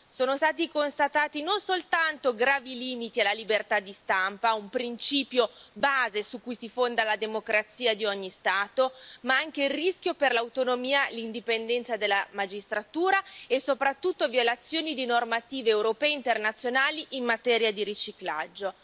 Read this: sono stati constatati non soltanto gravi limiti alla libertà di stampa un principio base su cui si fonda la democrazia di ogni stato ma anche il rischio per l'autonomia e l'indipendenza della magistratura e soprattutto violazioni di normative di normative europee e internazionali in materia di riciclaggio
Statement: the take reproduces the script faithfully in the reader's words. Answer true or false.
false